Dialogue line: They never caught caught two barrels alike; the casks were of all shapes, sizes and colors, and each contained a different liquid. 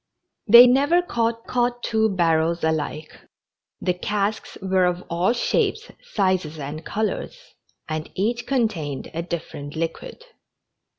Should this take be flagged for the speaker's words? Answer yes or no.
no